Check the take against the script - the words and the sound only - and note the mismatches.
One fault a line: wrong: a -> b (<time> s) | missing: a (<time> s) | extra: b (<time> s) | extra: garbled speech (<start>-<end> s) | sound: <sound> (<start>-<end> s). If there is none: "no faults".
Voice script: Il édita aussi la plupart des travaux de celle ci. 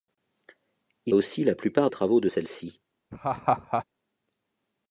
missing: édita (1.1 s)
missing: des (1.9 s)
sound: laugh (3.1-3.8 s)